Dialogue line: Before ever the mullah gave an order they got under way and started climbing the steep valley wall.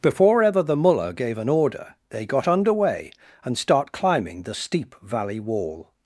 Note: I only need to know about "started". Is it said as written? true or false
false